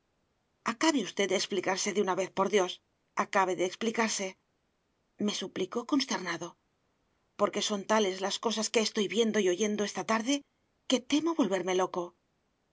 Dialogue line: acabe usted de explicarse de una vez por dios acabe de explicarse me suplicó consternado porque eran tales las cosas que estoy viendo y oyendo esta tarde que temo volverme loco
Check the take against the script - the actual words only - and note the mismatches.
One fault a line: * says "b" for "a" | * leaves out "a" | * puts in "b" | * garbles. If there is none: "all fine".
* says "son" for "eran"